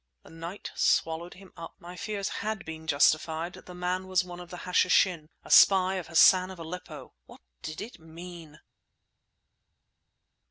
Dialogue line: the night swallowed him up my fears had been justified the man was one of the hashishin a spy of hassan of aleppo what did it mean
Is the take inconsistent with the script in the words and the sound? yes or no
no